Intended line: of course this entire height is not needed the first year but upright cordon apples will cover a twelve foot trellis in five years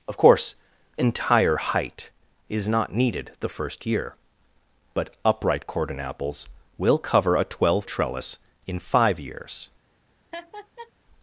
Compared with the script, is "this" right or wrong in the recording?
wrong